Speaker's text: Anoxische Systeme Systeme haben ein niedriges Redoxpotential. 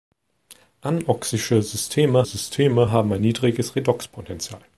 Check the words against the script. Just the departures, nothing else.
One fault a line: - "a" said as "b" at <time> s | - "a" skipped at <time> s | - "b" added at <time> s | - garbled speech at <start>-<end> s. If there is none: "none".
none